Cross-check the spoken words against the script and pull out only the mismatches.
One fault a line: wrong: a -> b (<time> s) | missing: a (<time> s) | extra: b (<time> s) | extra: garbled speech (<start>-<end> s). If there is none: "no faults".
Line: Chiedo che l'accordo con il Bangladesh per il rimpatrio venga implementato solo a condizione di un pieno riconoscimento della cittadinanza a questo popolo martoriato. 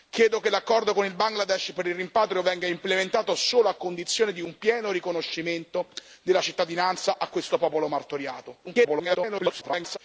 extra: garbled speech (8.6-10.0 s)